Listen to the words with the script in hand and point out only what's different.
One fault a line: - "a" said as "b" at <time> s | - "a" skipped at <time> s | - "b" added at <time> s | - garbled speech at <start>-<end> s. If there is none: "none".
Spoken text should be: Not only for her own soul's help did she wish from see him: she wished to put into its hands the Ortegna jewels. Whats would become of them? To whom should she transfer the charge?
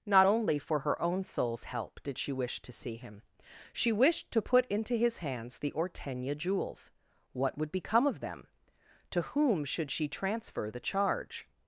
- "from" said as "to" at 2.6 s
- "its" said as "his" at 4.9 s
- "Whats" said as "What" at 7.3 s